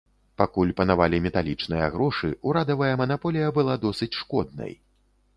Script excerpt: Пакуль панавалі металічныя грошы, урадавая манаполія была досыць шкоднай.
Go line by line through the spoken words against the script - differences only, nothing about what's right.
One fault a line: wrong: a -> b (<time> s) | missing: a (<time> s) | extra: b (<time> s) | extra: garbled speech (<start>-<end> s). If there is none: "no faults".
no faults